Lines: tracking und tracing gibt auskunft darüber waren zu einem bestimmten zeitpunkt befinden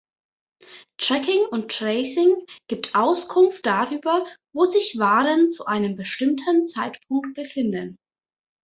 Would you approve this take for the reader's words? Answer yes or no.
no